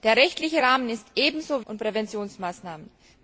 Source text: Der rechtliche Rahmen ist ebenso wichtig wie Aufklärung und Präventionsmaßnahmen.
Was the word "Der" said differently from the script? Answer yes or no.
no